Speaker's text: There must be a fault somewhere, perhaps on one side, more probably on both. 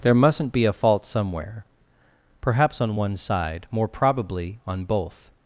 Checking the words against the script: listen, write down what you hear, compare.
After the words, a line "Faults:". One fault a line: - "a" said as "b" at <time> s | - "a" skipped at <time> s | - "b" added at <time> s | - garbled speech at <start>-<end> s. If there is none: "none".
There mustn't be a fault somewhere, perhaps on one side, more probably on both.
Faults:
- "must" said as "mustn't" at 0.1 s